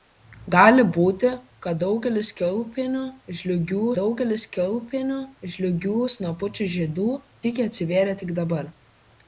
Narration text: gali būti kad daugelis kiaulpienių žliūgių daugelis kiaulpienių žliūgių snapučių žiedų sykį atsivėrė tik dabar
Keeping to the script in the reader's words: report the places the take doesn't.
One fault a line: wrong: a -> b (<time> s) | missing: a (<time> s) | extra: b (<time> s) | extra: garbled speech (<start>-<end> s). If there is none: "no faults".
no faults